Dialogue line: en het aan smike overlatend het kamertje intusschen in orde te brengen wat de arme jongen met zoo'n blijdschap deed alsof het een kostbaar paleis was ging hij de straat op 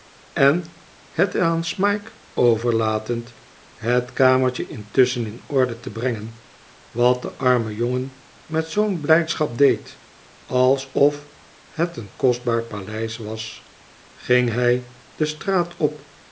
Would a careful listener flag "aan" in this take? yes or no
no